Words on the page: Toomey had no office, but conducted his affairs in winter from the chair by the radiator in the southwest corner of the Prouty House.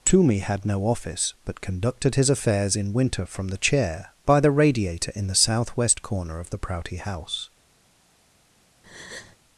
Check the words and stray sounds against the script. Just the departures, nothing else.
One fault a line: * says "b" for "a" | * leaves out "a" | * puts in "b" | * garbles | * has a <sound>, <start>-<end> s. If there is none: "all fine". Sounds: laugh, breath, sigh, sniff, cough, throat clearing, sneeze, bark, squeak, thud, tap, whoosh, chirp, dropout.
* has a breath, 8.8-9.4 s